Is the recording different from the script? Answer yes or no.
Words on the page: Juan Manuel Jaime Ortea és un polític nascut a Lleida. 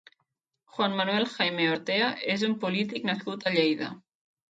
no